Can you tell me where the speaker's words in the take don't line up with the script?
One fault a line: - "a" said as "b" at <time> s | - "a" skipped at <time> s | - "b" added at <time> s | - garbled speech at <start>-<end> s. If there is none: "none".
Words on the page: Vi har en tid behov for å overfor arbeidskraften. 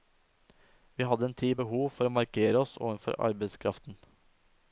- "har" said as "hadde" at 1.0 s
- "markere oss" added at 2.2 s